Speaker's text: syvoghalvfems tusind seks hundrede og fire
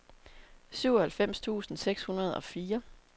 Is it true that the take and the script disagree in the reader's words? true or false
false